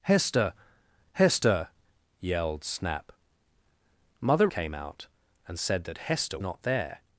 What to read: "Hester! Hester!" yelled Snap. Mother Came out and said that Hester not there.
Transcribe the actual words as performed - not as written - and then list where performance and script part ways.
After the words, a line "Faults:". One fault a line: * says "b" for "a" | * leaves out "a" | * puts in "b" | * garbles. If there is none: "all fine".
"Hester! Hester!" yelled Snap. Mother Came out and said that Hester not there.
Faults:
all fine